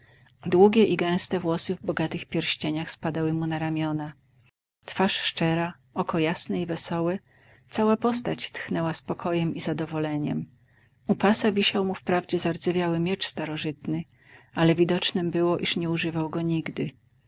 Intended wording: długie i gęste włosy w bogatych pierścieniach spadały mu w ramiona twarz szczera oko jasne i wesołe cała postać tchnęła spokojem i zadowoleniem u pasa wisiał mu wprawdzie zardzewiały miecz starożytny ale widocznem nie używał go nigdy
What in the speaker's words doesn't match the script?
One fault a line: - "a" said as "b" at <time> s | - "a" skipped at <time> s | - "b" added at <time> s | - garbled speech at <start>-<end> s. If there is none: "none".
- "w" said as "na" at 3.5 s
- "było iż" added at 15.3 s